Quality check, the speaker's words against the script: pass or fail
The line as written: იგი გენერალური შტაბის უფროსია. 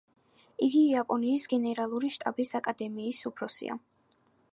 fail